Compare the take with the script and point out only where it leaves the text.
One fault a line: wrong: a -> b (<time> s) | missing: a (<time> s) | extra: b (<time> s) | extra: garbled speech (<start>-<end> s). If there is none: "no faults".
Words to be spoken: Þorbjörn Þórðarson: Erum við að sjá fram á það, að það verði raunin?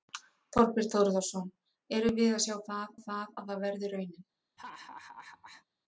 wrong: fram -> það (2.7 s)